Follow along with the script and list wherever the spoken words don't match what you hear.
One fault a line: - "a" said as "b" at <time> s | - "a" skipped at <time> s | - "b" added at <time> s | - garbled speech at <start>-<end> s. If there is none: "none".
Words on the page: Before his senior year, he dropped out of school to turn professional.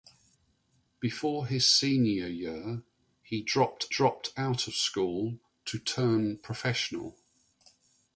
- "dropped" added at 3.9 s